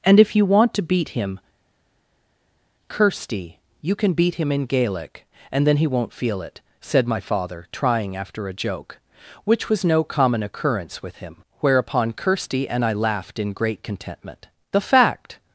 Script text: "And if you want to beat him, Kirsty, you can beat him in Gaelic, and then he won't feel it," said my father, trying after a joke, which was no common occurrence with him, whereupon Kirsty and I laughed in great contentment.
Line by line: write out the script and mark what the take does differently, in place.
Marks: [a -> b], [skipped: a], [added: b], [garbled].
"And if you want to beat him, Kirsty, you can beat him in Gaelic, and then he won't feel it," said my father, trying after a joke, which was no common occurrence with him, whereupon Kirsty and I laughed in great contentment. [added: The fact]